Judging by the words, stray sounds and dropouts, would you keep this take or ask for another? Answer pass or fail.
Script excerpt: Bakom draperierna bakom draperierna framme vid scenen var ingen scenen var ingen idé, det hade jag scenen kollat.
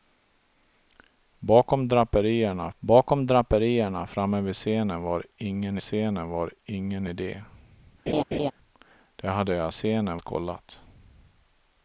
fail